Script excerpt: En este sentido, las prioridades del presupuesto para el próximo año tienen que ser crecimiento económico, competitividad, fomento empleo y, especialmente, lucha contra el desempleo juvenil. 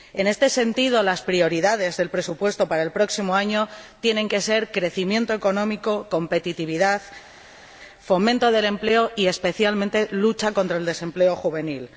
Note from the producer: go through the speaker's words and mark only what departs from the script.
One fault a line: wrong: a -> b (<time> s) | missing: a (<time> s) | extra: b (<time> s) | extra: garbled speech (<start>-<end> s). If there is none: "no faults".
extra: del (8.5 s)